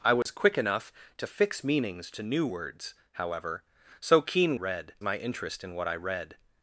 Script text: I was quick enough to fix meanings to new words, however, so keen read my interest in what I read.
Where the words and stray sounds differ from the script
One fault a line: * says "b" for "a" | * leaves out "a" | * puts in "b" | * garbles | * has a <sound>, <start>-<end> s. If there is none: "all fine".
* has a dropout, 0.2-0.3 s